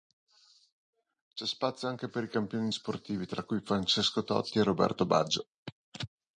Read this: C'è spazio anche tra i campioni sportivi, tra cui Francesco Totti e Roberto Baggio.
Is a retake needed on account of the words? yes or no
yes